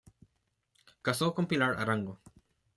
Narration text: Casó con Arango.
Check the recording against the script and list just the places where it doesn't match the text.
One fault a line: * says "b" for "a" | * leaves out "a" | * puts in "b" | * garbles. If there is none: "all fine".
* puts in "Pilar"